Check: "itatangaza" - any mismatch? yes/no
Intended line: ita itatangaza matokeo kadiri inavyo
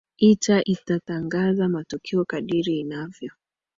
no